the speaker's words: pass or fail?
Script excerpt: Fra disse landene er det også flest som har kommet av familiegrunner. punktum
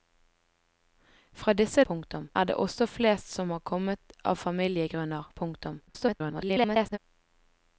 fail